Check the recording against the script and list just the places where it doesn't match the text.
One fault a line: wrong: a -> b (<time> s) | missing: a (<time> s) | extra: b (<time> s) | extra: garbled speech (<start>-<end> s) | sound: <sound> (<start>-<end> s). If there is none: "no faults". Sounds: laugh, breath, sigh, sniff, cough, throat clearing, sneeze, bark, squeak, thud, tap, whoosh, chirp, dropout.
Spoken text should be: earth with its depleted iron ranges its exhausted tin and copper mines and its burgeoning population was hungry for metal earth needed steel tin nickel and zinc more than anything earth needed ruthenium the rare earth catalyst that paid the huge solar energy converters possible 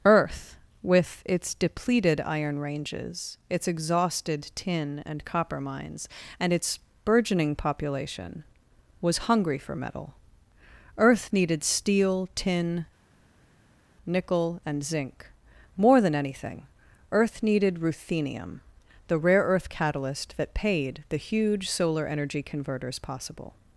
no faults